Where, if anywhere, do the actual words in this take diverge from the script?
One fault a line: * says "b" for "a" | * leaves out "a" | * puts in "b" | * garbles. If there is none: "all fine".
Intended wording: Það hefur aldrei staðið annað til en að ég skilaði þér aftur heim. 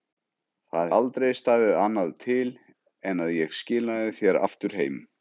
* leaves out "hefur"